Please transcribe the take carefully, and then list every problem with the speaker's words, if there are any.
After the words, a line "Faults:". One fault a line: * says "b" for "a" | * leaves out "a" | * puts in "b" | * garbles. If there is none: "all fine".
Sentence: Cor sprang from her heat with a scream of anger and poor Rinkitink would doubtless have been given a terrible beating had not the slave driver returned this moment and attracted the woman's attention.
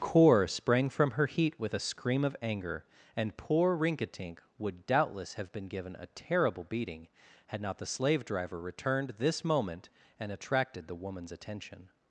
Cor sprang from her heat with a scream of anger and poor Rinkitink would doubtless have been given a terrible beating had not the slave driver returned this moment and attracted the woman's attention.
Faults:
all fine